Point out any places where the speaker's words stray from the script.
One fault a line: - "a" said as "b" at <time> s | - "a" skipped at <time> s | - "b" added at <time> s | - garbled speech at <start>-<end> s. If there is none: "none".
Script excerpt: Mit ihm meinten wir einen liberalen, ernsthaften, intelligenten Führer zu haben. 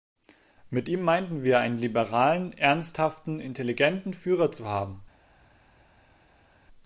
none